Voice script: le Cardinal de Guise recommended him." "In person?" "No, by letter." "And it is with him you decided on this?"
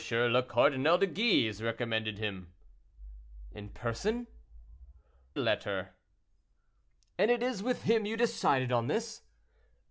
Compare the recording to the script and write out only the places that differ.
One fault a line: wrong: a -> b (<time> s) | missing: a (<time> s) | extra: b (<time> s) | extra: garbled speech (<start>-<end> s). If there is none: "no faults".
missing: No by (4.2 s)